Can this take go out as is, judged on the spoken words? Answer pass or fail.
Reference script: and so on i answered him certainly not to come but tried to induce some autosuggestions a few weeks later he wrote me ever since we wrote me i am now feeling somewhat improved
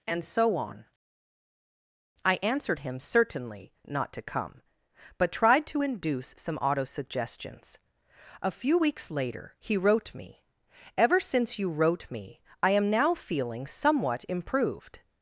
fail